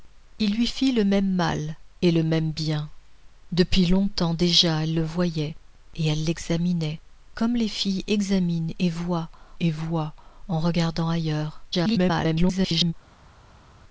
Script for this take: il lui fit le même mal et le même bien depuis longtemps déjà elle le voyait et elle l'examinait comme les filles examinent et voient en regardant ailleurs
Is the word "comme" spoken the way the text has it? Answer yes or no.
yes